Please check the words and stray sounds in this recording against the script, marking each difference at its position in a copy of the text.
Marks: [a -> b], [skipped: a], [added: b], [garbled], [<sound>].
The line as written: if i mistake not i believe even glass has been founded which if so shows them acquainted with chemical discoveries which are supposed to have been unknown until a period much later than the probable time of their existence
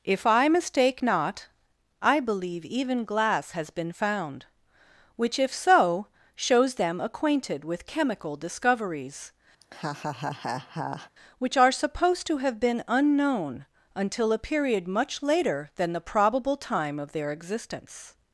if i mistake not i believe even glass has been [founded -> found] which if so shows them acquainted with chemical discoveries [laugh] which are supposed to have been unknown until a period much later than the probable time of their existence